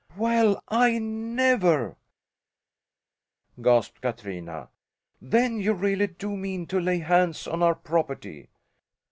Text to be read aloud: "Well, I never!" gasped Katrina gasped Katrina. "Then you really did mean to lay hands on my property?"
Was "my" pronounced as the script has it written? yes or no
no